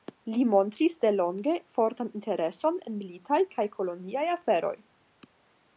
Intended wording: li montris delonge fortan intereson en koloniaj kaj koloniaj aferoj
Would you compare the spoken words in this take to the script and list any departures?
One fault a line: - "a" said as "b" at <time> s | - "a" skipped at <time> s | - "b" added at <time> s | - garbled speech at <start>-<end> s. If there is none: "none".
- "koloniaj" said as "militaj" at 3.0 s